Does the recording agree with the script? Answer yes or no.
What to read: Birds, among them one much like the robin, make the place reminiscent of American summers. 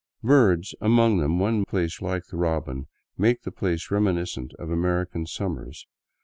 no